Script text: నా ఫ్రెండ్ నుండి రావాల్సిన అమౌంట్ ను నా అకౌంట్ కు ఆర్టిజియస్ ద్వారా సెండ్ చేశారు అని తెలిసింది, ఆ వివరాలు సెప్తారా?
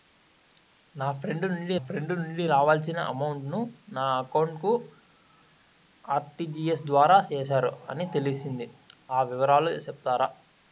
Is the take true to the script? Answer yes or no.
no